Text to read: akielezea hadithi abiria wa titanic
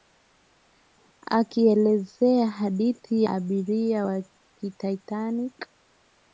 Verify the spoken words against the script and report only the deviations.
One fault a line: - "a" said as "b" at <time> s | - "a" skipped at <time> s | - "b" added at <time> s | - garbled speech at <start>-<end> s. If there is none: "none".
none